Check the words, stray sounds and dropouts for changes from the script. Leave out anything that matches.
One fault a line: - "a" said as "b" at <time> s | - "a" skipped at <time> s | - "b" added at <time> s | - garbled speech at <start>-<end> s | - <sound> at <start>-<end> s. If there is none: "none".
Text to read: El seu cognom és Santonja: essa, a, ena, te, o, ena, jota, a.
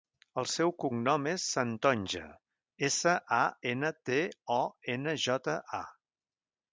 none